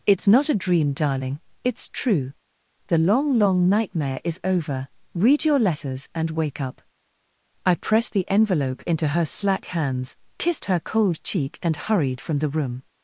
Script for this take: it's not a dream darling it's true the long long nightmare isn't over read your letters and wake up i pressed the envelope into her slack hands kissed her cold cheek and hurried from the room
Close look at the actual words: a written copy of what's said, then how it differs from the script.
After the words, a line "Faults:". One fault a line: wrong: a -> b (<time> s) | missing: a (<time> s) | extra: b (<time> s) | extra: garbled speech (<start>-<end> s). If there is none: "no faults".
it's not a dream darling it's true the long long nightmare is over read your letters and wake up i pressed the envelope into her slack hands kissed her cold cheek and hurried from the room
Faults:
wrong: isn't -> is (4.2 s)